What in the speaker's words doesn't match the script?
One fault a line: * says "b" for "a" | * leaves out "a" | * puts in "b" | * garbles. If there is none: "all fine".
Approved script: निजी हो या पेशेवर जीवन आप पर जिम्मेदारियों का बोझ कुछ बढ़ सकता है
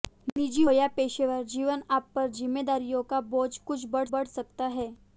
* leaves out "हो"
* puts in "बढ़"